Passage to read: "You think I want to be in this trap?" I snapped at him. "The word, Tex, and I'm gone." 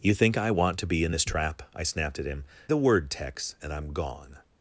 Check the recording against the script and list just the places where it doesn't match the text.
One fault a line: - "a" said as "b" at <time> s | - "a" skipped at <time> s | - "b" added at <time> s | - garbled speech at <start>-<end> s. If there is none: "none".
none